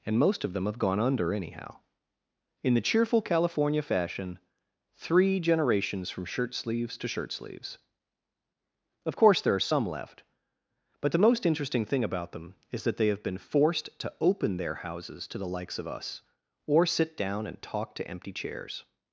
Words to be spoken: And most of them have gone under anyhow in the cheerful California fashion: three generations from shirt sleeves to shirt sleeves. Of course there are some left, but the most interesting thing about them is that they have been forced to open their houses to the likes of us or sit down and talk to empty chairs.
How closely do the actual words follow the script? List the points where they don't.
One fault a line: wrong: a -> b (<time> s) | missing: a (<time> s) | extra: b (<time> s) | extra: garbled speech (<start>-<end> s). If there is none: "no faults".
no faults